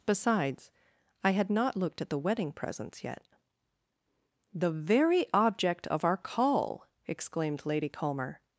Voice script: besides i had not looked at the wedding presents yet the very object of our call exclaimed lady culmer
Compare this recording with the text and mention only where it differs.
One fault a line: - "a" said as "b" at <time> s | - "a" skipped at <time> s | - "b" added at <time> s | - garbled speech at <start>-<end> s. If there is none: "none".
none